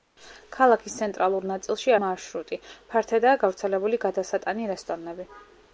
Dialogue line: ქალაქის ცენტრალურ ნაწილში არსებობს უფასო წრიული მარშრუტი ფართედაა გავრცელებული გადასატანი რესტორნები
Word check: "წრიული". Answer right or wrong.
wrong